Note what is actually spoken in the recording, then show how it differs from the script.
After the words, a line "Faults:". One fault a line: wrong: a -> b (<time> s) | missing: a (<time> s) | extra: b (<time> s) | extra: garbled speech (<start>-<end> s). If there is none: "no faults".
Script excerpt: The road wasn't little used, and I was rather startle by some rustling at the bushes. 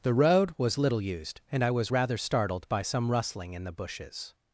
The road was little used, and I was rather startled by some rustling in the bushes.
Faults:
wrong: wasn't -> was (0.6 s)
wrong: startle -> startled (2.2 s)
wrong: at -> in (3.5 s)